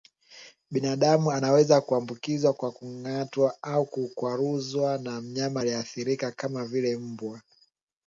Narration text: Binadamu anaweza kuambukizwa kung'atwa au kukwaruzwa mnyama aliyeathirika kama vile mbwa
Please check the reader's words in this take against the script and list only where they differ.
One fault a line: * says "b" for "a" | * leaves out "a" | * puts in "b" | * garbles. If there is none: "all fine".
* puts in "kwa"
* puts in "na"